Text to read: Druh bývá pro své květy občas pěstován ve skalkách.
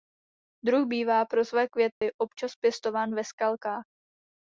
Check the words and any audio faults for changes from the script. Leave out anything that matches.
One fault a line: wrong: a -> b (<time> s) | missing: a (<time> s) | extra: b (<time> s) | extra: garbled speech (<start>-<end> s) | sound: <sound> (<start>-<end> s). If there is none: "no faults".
sound: dropout (1.9-2.0 s)